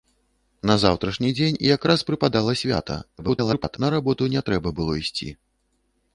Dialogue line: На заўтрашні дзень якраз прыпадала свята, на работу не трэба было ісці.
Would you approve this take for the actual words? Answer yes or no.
no